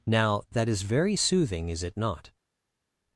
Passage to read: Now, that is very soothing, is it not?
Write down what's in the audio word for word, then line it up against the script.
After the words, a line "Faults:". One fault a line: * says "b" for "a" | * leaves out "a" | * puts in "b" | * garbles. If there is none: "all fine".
Now, that is very soothing, is it not?
Faults:
all fine